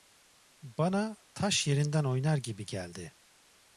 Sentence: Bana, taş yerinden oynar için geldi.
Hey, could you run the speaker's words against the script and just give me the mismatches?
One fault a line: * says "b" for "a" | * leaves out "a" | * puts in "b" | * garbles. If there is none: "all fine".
* says "gibi" for "için"